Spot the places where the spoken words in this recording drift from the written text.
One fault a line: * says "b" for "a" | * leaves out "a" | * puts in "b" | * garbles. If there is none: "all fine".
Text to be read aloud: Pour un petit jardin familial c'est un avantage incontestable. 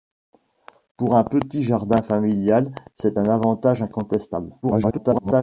* garbles